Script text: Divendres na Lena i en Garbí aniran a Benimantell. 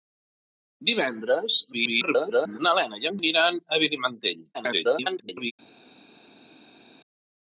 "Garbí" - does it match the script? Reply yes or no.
no